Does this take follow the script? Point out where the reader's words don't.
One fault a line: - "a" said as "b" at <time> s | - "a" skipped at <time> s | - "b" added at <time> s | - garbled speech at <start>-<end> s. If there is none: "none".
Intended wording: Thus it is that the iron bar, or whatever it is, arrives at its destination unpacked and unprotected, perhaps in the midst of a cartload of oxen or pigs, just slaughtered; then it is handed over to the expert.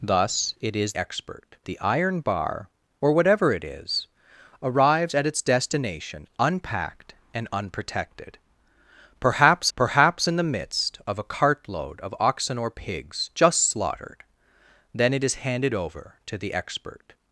- "that" said as "expert" at 1.0 s
- "perhaps" added at 9.8 s